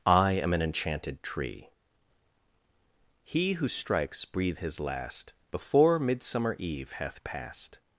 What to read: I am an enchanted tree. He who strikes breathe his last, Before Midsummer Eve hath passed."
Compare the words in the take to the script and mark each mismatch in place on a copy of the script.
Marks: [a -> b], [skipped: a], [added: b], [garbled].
I am an enchanted tree. He who strikes breathe his last, Before Midsummer Eve hath passed."